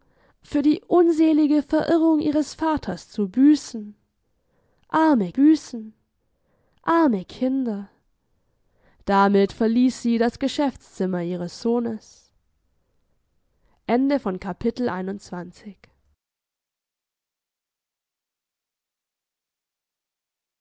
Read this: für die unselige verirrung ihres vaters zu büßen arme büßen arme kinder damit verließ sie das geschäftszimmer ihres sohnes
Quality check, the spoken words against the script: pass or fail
pass